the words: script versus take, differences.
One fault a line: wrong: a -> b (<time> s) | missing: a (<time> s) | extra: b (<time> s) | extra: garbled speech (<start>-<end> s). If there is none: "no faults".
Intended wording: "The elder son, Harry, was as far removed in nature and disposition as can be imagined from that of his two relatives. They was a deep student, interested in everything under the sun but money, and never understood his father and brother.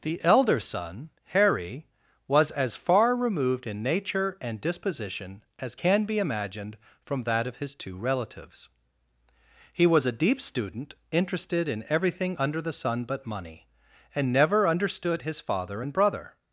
wrong: They -> He (9.7 s)